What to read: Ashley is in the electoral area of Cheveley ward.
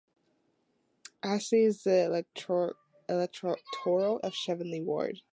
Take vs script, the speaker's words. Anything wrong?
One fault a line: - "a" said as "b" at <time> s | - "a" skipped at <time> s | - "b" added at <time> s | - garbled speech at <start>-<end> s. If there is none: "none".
- "area" skipped at 4.2 s